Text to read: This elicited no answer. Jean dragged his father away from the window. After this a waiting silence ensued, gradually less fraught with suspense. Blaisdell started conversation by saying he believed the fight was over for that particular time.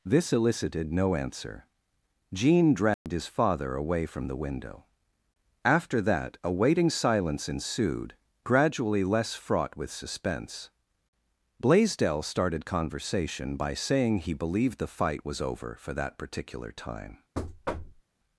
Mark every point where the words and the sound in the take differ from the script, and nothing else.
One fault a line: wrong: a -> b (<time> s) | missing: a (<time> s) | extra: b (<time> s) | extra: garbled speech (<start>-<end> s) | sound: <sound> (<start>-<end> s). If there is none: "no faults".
sound: dropout (2.9-3.1 s)
wrong: this -> that (6.0 s)
sound: thud (17.3-18.0 s)